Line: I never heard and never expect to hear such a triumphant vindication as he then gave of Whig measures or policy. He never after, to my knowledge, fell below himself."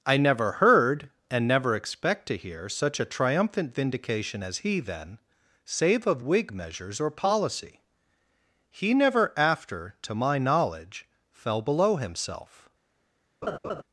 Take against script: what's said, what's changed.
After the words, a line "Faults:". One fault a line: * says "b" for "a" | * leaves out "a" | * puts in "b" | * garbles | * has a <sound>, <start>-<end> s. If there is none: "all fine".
I never heard and never expect to hear such a triumphant vindication as he then save of Whig measures or policy. He never after, to my knowledge, fell below himself."
Faults:
* says "save" for "gave"
* has a laugh, 13.4-13.8 s